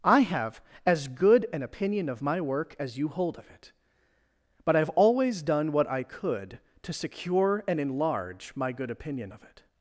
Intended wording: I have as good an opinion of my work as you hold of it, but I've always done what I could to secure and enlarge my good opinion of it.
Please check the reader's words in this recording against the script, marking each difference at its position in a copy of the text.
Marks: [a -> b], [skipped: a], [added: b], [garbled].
I have as good an opinion of my work as you hold of it, but I've always done what I could to secure and enlarge my good opinion of it.